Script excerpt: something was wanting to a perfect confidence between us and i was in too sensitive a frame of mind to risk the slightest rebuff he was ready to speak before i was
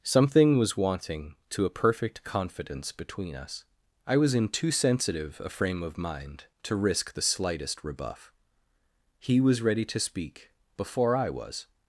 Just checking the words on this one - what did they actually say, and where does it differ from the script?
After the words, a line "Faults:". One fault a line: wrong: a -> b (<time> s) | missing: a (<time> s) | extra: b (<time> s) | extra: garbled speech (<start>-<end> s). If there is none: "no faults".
something was wanting to a perfect confidence between us i was in too sensitive a frame of mind to risk the slightest rebuff he was ready to speak before i was
Faults:
missing: and (3.6 s)